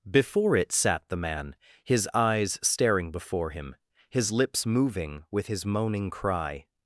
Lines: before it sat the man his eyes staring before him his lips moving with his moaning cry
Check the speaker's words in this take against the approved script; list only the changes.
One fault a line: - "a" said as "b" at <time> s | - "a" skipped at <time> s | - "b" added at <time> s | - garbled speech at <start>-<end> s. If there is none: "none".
none